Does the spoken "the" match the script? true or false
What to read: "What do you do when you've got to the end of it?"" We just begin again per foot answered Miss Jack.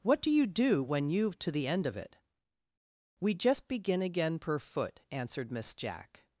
true